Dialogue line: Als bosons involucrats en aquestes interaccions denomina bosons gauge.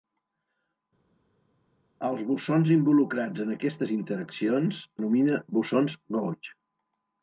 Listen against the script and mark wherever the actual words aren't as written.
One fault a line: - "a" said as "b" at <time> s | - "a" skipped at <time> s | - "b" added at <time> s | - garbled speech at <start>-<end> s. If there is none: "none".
none